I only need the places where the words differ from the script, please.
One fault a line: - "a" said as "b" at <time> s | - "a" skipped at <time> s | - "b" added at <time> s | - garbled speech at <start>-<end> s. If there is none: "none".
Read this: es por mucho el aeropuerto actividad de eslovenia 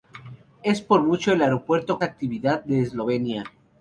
none